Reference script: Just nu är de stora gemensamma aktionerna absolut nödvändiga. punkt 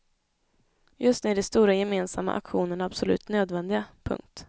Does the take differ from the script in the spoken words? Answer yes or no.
no